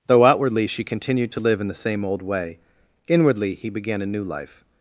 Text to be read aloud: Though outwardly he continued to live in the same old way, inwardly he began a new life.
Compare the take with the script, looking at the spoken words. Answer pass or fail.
fail